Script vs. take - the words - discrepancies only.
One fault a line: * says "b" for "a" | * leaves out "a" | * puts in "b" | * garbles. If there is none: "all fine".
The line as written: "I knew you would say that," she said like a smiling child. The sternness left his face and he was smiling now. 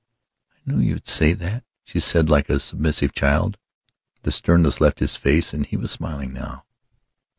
* says "submissive" for "smiling"